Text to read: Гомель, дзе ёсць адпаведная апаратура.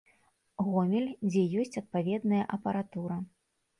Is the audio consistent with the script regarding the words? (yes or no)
yes